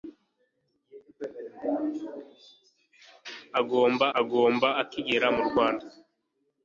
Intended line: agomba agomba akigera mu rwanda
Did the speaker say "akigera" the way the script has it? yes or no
yes